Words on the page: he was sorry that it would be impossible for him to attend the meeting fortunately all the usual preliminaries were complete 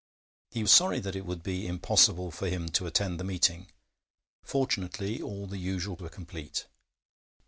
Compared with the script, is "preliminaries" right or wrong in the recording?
wrong